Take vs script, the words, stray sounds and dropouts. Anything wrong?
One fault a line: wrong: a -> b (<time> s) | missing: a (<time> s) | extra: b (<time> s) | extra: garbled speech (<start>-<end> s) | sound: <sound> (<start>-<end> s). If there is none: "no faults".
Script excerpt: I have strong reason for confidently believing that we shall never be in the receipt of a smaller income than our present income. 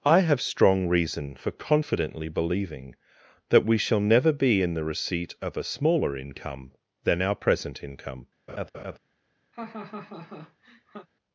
sound: laugh (8.5-9.0 s)
sound: laugh (9.5-11.1 s)